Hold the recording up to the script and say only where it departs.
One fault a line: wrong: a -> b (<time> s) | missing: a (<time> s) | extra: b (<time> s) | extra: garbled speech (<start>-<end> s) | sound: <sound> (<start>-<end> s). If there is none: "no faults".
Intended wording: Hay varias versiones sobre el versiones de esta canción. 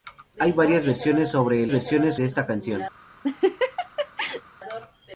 sound: laugh (3.2-4.4 s)